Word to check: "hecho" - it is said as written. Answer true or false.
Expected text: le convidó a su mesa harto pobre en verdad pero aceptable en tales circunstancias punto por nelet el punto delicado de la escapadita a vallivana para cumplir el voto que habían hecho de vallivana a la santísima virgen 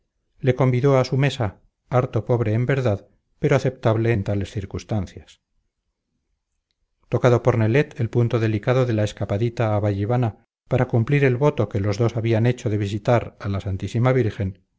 true